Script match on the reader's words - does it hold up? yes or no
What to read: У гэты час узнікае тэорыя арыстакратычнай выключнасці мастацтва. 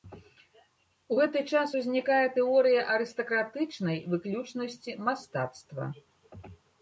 yes